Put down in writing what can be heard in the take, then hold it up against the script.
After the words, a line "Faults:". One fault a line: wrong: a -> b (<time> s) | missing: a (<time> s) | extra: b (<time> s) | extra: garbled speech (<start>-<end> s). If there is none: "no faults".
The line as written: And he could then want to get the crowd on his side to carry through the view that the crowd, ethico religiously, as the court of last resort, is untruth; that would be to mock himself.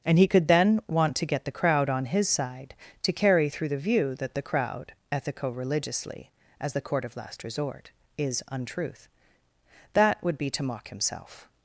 And he could then want to get the crowd on his side to carry through the view that the crowd, ethico religiously, as the court of last resort, is untruth; that would be to mock himself.
Faults:
no faults